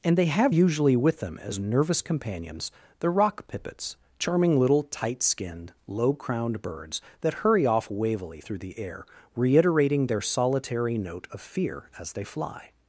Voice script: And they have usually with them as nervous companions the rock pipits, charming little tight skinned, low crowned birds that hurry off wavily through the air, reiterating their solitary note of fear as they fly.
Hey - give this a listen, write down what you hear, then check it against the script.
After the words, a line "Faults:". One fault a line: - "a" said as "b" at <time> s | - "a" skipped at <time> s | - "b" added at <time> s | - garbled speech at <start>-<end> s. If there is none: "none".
And they have usually with them as nervous companions the rock pipits, charming little tight skinned, low crowned birds that hurry off wavily through the air, reiterating their solitary note of fear as they fly.
Faults:
none